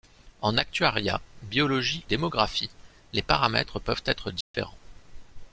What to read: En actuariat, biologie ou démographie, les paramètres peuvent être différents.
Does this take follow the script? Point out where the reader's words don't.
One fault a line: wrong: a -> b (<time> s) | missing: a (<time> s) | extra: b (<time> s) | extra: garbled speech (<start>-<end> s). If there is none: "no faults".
missing: ou (2.0 s)